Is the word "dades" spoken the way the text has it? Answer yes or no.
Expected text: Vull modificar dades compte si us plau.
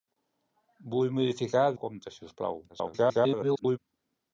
no